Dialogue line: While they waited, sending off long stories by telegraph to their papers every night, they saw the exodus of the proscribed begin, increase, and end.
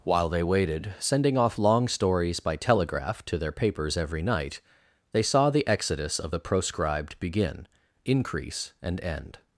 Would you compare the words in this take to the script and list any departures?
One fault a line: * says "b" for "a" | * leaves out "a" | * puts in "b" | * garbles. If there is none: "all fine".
all fine